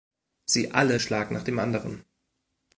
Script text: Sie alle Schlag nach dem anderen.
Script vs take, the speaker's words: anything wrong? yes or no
no